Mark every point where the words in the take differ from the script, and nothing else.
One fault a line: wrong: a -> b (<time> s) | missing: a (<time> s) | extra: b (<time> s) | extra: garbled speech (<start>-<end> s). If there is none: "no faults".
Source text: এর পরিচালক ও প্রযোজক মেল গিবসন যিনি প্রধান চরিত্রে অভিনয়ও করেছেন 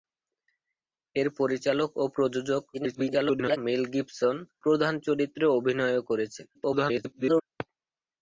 extra: garbled speech (2.7-3.6 s)
missing: যিনি (4.3 s)
extra: garbled speech (6.5-7.4 s)